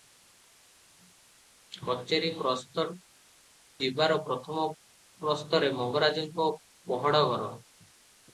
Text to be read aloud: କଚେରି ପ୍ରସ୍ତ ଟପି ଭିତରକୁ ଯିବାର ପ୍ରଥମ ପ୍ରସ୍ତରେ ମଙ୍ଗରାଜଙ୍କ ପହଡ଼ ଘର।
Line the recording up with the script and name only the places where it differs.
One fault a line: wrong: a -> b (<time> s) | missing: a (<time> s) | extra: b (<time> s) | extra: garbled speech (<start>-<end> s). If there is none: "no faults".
missing: ଟପି ଭିତରକୁ (2.9 s)